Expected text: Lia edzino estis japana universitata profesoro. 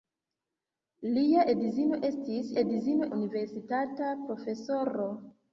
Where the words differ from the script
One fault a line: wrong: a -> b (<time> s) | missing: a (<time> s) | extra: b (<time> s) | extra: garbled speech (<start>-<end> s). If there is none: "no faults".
wrong: japana -> edzino (2.6 s)